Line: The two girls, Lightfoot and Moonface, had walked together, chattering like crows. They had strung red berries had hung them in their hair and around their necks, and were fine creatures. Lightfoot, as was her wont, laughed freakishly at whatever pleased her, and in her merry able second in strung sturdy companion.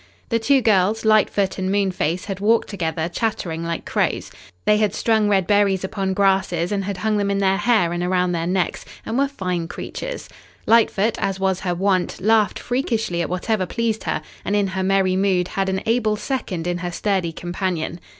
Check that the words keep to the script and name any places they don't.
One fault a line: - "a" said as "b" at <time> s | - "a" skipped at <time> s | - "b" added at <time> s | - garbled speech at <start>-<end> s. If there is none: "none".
- "upon grasses and" added at 5.8 s
- "mood had an" added at 15.2 s
- "strung" said as "her" at 16.8 s